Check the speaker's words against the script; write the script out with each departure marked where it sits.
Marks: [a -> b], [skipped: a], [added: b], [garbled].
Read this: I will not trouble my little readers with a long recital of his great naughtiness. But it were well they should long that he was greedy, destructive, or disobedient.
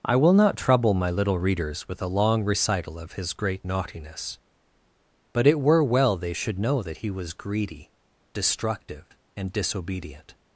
I will not trouble my little readers with a long recital of his great naughtiness. But it were well they should [long -> know] that he was greedy, destructive, [or -> and] disobedient.